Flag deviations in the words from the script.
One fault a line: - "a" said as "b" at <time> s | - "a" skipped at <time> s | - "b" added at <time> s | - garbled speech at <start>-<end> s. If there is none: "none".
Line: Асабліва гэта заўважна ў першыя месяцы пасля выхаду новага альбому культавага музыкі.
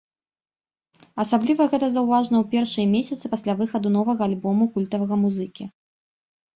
none